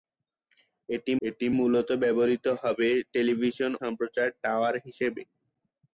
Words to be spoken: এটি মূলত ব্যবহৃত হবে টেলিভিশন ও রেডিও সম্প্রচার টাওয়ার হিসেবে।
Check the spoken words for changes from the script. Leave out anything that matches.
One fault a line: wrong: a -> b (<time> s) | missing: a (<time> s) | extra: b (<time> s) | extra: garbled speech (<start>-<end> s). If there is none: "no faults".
extra: এটি (1.2 s)
missing: ও রেডিও (3.7 s)